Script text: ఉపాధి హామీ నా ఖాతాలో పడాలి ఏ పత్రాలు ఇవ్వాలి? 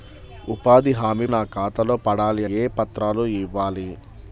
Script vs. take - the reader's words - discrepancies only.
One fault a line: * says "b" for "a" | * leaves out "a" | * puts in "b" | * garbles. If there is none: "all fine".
all fine